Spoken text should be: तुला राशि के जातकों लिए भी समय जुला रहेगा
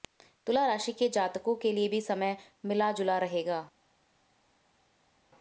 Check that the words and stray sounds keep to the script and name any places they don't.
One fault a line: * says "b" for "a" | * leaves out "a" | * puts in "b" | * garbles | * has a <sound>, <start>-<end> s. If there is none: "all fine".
* puts in "के"
* puts in "मिला"